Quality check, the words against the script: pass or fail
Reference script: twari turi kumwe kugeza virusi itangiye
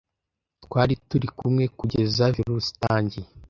pass